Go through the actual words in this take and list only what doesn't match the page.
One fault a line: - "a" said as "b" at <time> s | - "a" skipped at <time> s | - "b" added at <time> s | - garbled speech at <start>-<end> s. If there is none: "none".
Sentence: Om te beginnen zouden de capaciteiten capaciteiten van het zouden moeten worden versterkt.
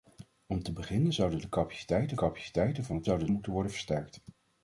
none